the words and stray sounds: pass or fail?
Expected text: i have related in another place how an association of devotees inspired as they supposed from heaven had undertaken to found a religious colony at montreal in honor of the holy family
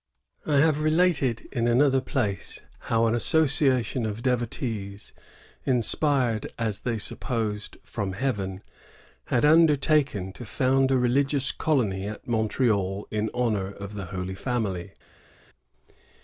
pass